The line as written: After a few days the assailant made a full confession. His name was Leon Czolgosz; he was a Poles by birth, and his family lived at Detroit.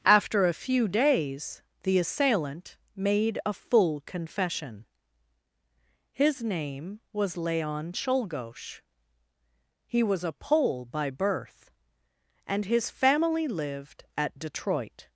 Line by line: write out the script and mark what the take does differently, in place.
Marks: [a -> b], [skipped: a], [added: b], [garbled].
After a few days the assailant made a full confession. His name was Leon Czolgosz; he was a [Poles -> Pole] by birth, and his family lived at Detroit.